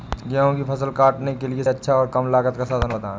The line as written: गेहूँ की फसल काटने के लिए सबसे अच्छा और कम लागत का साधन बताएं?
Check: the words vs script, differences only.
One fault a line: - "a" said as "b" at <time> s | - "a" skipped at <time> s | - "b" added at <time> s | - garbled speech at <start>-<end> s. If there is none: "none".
- "सबसे" skipped at 1.6 s